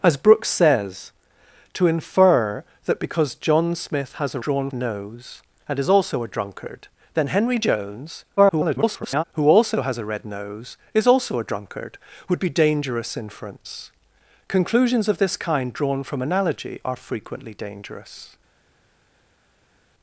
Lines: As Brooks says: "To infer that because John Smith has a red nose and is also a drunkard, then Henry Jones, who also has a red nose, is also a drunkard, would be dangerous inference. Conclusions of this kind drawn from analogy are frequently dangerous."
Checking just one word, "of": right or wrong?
right